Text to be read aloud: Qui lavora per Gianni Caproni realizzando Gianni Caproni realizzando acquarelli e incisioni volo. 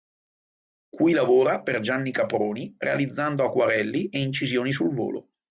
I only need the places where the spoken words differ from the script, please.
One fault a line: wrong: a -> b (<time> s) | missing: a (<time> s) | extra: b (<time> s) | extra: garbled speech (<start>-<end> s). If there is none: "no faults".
missing: Gianni Caproni realizzando (3.5 s)
extra: sul (4.7 s)